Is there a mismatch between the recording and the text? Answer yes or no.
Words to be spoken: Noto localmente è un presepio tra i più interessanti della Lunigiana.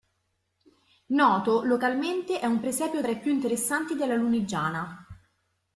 no